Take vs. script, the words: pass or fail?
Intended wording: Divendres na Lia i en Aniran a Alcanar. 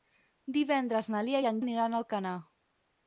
pass